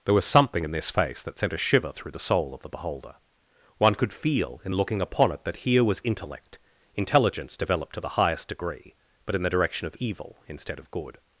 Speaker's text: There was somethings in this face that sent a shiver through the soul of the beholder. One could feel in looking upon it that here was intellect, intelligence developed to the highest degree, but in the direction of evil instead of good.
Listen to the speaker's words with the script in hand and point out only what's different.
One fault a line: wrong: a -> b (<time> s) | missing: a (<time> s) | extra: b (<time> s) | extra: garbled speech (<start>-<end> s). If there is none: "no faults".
wrong: somethings -> something (0.2 s)